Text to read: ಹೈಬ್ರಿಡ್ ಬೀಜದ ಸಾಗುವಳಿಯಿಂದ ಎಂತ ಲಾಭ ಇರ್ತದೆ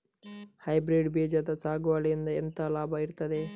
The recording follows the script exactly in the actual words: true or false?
true